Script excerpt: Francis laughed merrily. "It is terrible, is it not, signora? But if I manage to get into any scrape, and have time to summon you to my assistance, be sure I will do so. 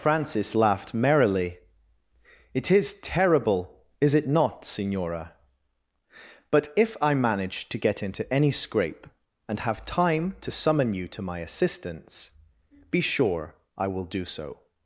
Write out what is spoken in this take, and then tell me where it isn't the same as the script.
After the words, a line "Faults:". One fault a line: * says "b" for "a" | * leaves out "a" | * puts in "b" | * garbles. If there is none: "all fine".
Francis laughed merrily. "It is terrible, is it not, signora? But if I manage to get into any scrape, and have time to summon you to my assistance, be sure I will do so.
Faults:
all fine